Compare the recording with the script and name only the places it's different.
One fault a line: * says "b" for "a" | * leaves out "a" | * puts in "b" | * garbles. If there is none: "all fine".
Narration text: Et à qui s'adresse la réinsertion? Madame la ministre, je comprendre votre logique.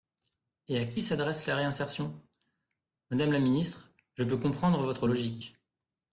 * puts in "peux"